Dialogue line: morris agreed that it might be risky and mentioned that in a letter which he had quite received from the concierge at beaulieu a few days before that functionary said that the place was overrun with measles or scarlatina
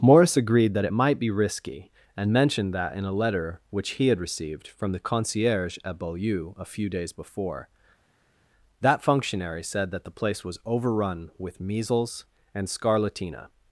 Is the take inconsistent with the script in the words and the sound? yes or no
yes